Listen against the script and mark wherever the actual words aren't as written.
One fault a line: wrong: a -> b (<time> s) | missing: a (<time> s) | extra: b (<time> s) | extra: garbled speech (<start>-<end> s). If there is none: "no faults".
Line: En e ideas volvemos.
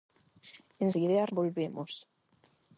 no faults